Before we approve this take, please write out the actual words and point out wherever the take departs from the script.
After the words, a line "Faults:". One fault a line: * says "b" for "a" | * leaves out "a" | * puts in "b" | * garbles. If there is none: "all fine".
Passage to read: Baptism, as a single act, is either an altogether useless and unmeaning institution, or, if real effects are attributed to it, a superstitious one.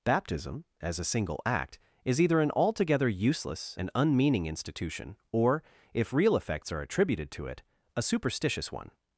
Baptism, as a single act, is either an altogether useless and unmeaning institution, or, if real effects are attributed to it, a superstitious one.
Faults:
all fine